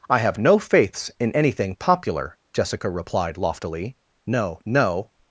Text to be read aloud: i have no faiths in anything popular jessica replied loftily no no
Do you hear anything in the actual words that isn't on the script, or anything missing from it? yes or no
no